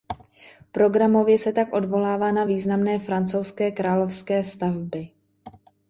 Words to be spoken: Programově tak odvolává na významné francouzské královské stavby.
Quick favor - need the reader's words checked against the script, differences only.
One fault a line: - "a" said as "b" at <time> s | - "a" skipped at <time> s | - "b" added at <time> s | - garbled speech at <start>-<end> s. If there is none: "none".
- "se" added at 1.4 s